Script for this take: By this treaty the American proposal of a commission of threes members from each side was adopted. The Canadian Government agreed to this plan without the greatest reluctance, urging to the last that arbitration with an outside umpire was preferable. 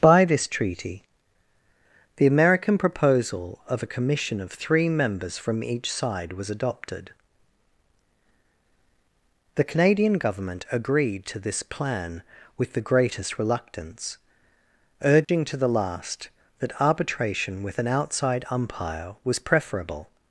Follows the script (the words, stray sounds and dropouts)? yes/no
no